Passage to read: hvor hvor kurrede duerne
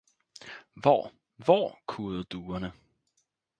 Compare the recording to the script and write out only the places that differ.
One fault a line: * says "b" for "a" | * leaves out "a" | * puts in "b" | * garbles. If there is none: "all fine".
all fine